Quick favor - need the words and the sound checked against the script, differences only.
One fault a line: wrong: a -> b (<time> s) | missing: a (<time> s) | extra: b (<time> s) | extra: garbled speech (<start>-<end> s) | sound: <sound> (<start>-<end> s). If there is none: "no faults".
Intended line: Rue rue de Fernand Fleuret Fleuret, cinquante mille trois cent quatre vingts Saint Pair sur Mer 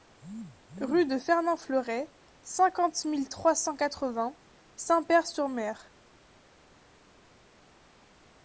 missing: rue (1.1 s)
missing: Fleuret (2.1 s)